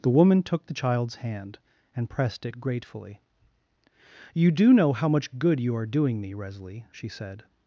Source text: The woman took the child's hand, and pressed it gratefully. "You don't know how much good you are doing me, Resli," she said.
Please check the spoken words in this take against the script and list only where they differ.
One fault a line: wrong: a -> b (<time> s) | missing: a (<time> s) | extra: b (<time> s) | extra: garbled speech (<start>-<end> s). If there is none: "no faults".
wrong: don't -> do (4.5 s)